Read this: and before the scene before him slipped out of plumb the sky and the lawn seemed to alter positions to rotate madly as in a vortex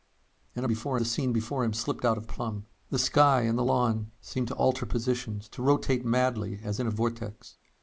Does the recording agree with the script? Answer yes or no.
yes